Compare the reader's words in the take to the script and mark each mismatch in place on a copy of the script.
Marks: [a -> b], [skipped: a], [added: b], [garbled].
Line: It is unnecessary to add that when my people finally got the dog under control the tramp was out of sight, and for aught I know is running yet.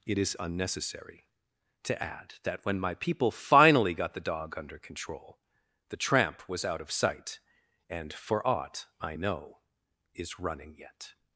It is unnecessary to add that when my people finally got the dog under control the tramp was out of sight, and for aught I know is running yet.